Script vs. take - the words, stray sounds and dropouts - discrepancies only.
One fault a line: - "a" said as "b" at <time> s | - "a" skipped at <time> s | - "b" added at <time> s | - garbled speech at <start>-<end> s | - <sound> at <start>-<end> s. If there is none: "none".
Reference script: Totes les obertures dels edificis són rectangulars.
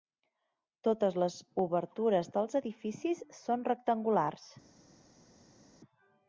none